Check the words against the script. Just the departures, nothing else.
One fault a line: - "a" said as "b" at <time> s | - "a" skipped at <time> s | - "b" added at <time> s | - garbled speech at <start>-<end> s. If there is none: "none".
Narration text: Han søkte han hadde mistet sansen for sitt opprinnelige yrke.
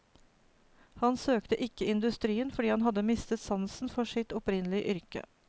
- "ikke industrien fordi" added at 1.7 s